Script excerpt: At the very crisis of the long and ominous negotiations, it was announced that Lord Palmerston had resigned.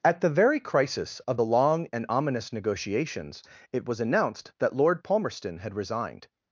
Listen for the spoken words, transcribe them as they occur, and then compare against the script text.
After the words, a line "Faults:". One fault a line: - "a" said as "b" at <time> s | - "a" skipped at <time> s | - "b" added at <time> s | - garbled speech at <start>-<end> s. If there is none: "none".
At the very crisis of the long and ominous negotiations, it was announced that Lord Palmerston had resigned.
Faults:
none